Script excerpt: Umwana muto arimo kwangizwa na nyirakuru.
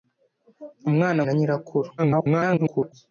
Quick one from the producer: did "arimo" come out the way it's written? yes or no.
no